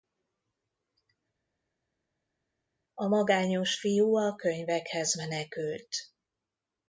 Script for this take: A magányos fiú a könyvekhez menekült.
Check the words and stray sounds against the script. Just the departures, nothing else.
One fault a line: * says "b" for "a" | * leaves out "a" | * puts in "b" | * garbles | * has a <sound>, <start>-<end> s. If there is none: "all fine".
all fine